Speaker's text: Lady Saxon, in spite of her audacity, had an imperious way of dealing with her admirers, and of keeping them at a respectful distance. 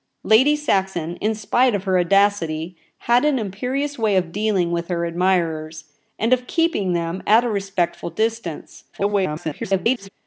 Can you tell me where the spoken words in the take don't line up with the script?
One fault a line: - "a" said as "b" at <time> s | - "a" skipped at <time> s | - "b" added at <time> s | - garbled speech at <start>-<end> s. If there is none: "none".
- garbled speech at 8.9-10.1 s